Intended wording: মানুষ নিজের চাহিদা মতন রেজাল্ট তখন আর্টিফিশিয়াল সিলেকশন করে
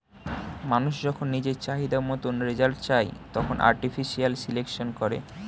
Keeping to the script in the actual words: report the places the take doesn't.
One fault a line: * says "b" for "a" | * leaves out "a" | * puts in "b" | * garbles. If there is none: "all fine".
* puts in "যখন"
* puts in "চায়"